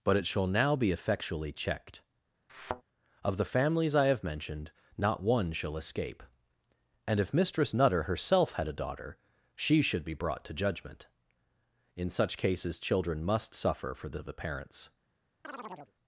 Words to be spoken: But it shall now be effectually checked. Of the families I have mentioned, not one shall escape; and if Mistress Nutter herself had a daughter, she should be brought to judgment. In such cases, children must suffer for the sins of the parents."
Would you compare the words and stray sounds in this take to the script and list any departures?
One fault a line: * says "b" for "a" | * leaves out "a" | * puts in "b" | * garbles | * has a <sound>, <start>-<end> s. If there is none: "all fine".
* has a thud, 2.5-2.8 s
* leaves out "sins"
* has a chirp, 15.4-15.9 s